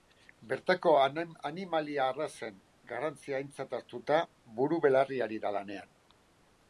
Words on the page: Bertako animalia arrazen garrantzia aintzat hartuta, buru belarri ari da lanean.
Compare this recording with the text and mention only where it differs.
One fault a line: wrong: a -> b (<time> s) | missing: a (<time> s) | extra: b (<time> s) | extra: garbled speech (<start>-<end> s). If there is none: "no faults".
no faults